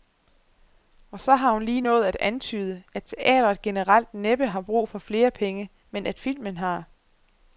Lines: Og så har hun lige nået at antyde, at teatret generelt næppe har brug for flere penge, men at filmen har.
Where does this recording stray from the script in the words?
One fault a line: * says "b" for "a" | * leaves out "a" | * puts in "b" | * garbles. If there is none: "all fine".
all fine